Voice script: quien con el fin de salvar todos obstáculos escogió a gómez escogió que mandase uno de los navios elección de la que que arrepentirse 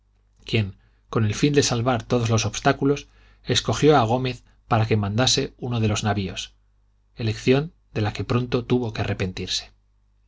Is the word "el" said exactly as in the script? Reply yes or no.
yes